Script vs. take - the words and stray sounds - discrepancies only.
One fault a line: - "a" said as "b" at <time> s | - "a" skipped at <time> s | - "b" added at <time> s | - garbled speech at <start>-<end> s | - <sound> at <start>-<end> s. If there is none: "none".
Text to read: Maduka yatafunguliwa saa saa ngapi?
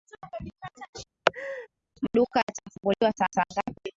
- laugh at 1.3-1.7 s